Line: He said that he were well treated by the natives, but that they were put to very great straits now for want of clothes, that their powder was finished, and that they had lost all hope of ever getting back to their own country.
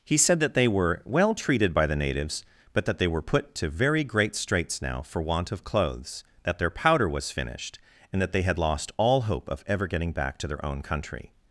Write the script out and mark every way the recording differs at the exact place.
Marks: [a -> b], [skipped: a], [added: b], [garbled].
He said that [he -> they] were well treated by the natives, but that they were put to very great straits now for want of clothes, that their powder was finished, and that they had lost all hope of ever getting back to their own country.